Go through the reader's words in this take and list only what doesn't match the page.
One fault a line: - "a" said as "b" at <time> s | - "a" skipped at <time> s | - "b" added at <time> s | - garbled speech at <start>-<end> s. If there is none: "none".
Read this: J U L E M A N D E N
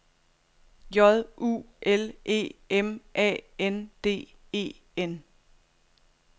none